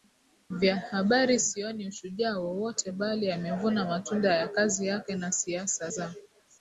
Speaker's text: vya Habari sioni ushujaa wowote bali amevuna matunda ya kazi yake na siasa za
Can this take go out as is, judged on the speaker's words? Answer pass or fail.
pass